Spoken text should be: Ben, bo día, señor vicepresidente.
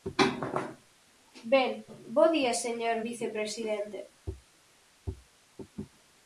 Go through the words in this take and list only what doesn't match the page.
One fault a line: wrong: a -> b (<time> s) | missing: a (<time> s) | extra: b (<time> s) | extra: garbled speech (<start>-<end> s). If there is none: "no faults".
no faults